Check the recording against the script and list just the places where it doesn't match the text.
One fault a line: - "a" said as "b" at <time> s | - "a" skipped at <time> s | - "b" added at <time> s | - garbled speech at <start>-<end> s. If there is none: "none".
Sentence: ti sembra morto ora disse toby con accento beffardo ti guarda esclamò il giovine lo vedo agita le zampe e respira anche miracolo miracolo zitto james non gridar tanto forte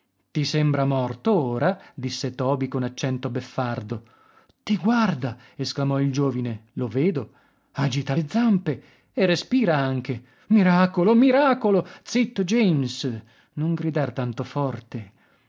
none